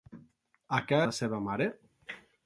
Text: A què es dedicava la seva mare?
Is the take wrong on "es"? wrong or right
wrong